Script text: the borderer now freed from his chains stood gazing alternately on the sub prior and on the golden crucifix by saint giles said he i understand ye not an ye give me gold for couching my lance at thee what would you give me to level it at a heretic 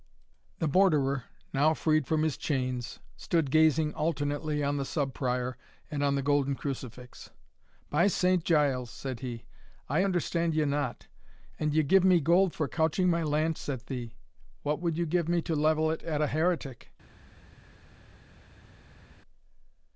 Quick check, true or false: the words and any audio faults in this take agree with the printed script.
true